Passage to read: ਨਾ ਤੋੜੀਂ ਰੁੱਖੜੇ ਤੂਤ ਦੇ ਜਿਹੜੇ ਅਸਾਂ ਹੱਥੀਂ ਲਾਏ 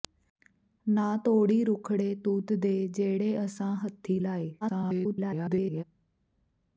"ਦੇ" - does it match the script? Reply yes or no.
yes